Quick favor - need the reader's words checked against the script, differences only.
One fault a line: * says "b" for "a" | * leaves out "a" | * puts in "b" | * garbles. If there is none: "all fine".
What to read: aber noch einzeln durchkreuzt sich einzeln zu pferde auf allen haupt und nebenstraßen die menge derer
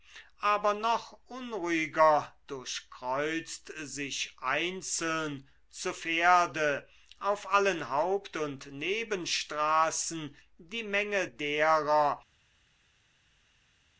* says "unruhiger" for "einzeln"